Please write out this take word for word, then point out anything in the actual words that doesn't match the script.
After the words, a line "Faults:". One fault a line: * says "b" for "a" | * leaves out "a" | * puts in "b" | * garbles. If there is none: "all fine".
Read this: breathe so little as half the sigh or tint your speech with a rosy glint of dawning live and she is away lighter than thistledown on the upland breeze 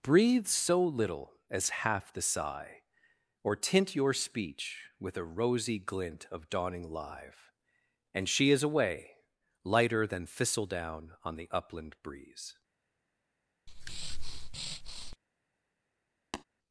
breathe so little as half the sigh or tint your speech with a rosy glint of dawning live and she is away lighter than thistledown on the upland breeze
Faults:
all fine